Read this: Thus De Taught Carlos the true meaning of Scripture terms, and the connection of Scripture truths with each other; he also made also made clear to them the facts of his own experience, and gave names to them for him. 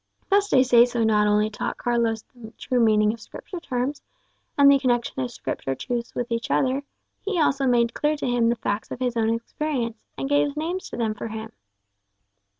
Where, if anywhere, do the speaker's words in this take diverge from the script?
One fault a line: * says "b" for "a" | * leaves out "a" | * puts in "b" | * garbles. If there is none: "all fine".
* puts in "Seso not only"
* leaves out "also made"
* says "him" for "them"